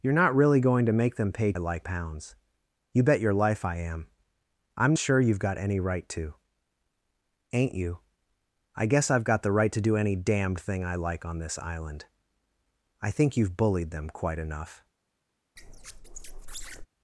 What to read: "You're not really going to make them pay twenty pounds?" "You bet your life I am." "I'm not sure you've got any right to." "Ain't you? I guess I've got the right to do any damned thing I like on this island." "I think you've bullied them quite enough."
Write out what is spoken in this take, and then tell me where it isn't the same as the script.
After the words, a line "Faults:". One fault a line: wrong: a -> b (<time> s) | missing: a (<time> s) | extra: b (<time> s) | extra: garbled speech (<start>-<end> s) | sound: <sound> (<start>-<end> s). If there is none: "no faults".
"You're not really going to make them pay like pounds?" "You bet your life I am." "I'm sure you've got any right to." "Ain't you? I guess I've got the right to do any damned thing I like on this island." "I think you've bullied them quite enough."
Faults:
wrong: twenty -> like (1.6 s)
missing: not (4.9 s)
sound: squeak (15.6-16.9 s)